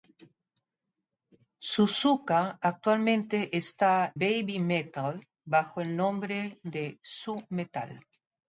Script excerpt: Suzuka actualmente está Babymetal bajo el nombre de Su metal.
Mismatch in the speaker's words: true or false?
false